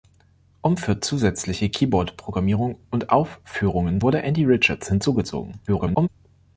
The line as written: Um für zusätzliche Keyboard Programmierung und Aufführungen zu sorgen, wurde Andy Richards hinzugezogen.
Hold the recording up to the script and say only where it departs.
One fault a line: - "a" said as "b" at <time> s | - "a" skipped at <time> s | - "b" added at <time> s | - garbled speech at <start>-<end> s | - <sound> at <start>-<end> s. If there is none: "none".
- "zu sorgen" skipped at 4.0 s
- garbled speech at 5.7-6.1 s